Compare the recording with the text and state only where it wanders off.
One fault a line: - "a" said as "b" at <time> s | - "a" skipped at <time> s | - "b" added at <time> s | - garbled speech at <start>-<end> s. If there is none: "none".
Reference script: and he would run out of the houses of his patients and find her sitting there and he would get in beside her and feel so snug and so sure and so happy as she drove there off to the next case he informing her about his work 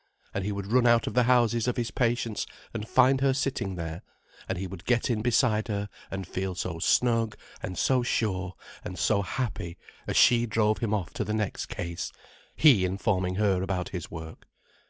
- "there" said as "him" at 10.8 s